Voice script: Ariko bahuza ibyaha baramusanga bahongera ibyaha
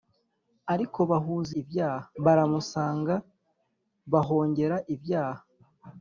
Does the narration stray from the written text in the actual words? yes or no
no